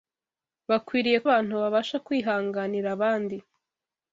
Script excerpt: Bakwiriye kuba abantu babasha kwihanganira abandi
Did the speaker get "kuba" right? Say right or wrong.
wrong